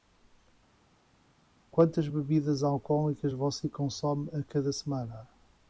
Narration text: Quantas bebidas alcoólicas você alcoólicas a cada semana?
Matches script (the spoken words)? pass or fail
fail